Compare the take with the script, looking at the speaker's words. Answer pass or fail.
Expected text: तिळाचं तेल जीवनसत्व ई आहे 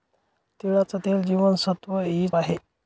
pass